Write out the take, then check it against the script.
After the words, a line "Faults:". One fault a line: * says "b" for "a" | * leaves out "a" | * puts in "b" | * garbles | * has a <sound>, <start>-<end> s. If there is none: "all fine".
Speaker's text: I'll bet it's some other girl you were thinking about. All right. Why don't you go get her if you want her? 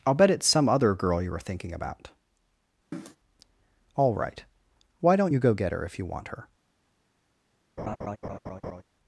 I'll bet it's some other girl you were thinking about. All right. Why don't you go get her if you want her?
Faults:
* has a cough, 2.9-3.2 s
* has a laugh, 7.8-8.8 s